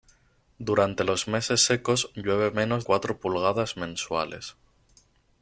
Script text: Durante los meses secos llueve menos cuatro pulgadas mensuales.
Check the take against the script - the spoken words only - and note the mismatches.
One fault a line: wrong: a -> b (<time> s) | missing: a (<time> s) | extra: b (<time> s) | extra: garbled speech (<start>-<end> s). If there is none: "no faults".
no faults